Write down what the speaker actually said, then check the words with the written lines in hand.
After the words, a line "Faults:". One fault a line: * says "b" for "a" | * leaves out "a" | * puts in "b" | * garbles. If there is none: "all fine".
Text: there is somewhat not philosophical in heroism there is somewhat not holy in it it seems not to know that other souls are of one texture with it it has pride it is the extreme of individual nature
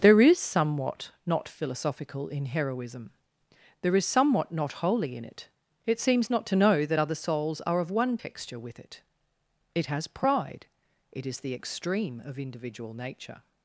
there is somewhat not philosophical in heroism there is somewhat not holy in it it seems not to know that other souls are of one texture with it it has pride it is the extreme of individual nature
Faults:
all fine